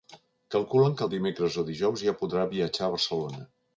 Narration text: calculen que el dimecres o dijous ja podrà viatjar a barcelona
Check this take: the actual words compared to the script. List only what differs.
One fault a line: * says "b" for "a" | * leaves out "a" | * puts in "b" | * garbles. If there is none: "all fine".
all fine